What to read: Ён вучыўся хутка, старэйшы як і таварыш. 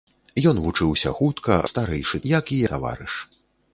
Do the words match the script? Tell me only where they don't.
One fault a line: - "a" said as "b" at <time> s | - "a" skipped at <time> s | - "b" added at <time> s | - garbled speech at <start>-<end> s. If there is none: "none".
none